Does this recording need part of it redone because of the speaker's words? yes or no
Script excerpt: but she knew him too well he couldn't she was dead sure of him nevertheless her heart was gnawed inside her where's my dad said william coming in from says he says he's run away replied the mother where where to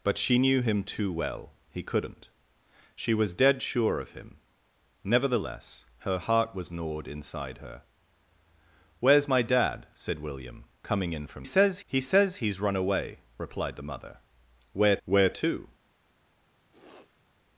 no